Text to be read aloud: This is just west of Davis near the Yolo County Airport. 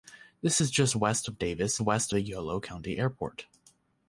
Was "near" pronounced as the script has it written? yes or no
no